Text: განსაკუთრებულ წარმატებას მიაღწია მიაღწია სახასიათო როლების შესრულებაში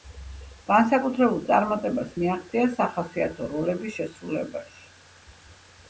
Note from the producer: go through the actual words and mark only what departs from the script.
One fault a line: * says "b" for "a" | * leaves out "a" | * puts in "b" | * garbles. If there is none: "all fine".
* leaves out "მიაღწია"